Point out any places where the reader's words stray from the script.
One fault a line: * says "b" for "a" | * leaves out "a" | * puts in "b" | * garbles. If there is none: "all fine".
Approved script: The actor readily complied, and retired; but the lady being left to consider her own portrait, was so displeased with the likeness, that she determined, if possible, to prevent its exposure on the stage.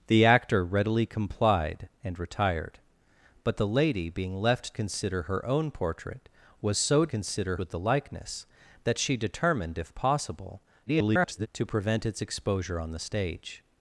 * leaves out "to"
* says "consider" for "displeased"
* garbles